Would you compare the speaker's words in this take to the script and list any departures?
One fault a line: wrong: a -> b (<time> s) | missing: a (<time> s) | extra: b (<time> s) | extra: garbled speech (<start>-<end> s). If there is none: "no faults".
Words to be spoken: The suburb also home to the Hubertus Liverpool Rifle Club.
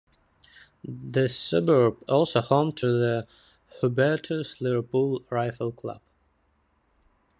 no faults